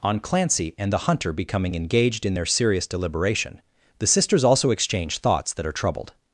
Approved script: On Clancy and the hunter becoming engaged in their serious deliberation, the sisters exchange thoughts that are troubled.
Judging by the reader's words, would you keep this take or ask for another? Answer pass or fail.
fail